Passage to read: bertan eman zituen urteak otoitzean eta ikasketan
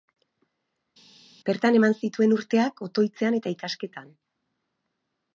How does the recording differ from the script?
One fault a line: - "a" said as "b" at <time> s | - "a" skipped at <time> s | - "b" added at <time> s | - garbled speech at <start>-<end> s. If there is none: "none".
none